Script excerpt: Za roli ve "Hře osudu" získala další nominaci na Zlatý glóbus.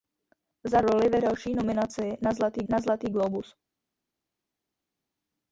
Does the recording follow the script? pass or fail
fail